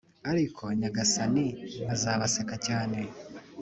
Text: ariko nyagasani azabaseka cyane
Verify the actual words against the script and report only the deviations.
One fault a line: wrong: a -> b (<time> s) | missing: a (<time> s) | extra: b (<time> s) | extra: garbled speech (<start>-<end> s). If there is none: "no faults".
no faults